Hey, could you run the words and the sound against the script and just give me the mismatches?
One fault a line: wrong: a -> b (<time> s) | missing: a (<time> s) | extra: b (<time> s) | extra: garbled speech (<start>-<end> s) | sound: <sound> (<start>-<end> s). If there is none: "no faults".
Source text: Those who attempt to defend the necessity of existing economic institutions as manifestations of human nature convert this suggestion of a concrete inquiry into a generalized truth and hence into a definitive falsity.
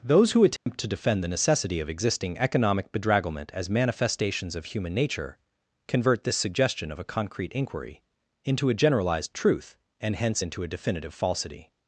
sound: dropout (0.6-0.7 s)
wrong: institutions -> bedragglement (2.9 s)